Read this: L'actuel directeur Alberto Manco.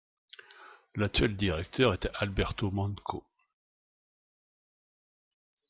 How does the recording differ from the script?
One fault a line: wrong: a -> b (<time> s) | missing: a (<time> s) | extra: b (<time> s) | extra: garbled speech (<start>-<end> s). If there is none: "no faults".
extra: est (1.9 s)